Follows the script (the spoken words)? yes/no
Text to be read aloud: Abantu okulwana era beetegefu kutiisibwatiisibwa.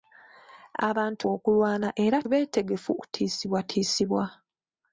yes